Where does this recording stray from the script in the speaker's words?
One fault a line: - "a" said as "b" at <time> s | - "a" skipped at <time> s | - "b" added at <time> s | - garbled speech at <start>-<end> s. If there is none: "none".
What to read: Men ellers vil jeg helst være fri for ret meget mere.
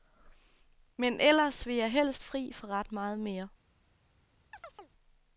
- "være" skipped at 2.2 s